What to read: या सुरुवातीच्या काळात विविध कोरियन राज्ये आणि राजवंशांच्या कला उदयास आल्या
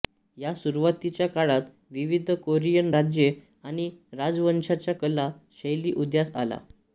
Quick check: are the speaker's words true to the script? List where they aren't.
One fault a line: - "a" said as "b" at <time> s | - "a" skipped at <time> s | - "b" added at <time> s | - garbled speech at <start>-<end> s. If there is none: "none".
- "शैली" added at 5.6 s